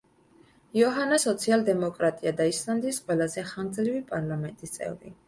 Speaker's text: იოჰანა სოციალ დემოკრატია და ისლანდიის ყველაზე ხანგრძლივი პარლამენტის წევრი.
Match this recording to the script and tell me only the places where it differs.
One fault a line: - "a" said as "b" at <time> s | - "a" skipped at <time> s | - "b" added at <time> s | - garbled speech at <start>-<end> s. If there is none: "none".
none